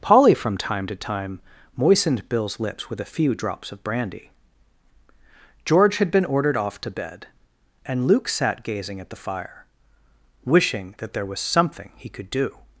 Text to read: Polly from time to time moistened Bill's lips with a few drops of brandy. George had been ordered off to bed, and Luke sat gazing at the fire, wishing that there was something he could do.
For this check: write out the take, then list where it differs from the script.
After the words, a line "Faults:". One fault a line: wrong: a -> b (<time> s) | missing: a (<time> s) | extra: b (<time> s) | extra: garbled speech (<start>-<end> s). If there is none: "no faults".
Polly from time to time moistened Bill's lips with a few drops of brandy. George had been ordered off to bed, and Luke sat gazing at the fire, wishing that there was something he could do.
Faults:
no faults